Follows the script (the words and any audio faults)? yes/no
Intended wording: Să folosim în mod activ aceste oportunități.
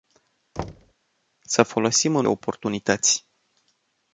no